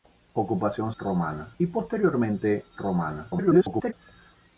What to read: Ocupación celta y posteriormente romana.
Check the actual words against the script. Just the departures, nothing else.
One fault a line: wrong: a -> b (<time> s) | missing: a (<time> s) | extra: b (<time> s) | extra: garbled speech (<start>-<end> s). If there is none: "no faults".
wrong: celta -> romana (1.0 s)
extra: garbled speech (3.3-3.9 s)